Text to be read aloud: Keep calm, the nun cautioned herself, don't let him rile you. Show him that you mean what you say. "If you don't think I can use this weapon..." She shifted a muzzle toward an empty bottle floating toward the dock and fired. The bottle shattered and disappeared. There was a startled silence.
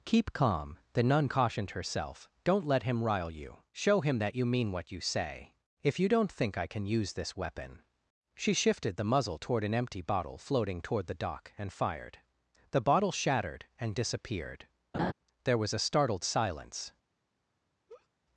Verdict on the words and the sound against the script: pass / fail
fail